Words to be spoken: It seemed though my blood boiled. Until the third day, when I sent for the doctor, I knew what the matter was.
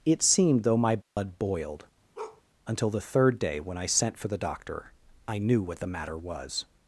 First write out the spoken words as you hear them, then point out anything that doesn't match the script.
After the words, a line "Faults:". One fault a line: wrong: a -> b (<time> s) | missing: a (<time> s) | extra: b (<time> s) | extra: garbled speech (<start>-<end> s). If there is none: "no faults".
It seemed though my blood boiled. Until the third day, when I sent for the doctor, I knew what the matter was.
Faults:
no faults